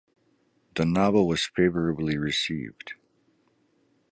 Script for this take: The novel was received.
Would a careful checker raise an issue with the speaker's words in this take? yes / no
yes